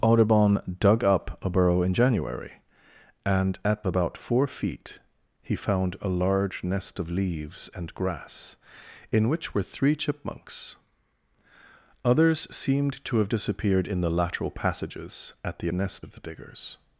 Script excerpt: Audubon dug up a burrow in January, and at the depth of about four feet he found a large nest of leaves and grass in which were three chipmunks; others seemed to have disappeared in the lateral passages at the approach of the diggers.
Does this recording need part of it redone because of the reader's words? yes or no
yes